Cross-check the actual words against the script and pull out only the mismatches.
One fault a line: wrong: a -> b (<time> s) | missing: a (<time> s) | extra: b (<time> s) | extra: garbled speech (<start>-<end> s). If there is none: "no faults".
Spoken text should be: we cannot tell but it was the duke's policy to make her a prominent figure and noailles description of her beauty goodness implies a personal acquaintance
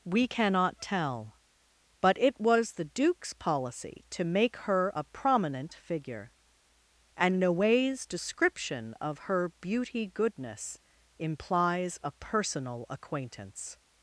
no faults